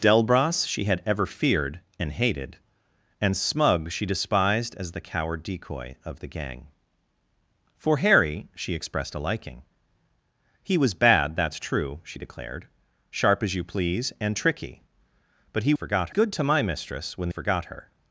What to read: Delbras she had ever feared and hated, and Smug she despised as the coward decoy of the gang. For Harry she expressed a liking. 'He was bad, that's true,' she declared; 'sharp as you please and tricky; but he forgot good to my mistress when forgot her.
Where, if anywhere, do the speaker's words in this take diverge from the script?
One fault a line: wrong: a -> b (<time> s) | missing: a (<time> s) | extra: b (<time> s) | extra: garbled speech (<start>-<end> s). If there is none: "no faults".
no faults